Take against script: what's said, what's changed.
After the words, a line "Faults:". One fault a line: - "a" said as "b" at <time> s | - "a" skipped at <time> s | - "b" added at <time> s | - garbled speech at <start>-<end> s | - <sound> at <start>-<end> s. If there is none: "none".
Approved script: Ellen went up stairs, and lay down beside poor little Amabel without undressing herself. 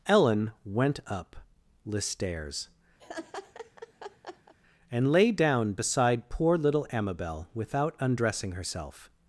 Ellen went up the stairs, and lay down beside poor little Amabel without undressing herself.
Faults:
- "the" added at 1.9 s
- laugh at 3.0-4.5 s